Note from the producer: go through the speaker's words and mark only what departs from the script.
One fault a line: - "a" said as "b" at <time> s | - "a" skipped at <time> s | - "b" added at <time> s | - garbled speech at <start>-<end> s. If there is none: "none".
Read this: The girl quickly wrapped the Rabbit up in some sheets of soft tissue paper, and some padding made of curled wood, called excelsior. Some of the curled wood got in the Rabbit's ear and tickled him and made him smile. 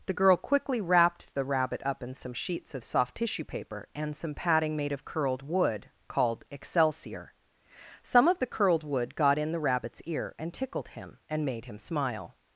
none